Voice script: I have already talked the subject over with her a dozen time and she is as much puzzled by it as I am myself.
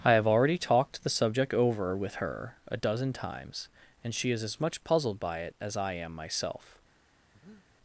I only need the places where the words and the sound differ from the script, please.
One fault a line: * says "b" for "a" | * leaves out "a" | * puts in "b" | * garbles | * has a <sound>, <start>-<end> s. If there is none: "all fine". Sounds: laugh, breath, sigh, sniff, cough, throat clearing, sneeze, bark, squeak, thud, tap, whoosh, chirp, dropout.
* says "times" for "time"
* has a breath, 7.3-7.7 s